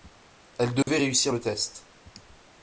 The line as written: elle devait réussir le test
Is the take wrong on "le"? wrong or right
right